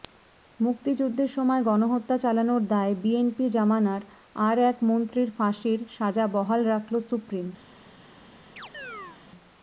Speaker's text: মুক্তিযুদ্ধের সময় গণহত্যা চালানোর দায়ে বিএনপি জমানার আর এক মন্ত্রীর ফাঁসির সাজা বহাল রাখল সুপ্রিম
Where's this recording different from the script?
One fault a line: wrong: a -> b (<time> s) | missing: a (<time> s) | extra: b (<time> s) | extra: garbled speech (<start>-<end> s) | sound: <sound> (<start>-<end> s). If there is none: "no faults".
sound: chirp (8.6-9.2 s)